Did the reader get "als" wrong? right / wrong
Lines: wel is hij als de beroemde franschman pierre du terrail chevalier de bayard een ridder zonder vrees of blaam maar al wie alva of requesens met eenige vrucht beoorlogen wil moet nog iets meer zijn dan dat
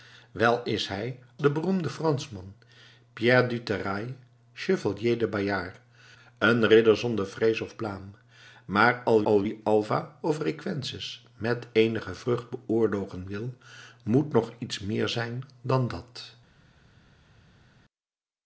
wrong